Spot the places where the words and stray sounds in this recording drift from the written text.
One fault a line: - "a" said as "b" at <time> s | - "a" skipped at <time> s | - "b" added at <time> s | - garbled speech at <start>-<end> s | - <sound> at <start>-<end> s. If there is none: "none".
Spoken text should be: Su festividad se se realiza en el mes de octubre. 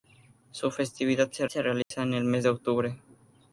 - dropout at 1.8-1.9 s